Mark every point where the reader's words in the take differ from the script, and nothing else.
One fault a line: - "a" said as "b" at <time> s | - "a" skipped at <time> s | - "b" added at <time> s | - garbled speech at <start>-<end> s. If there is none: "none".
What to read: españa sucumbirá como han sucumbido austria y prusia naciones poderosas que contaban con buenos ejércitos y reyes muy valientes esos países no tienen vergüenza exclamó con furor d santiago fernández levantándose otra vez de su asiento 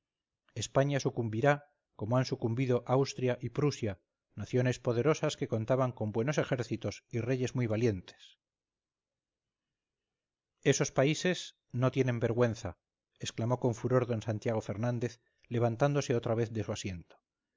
none